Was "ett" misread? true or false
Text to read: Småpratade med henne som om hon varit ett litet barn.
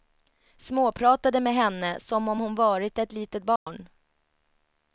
false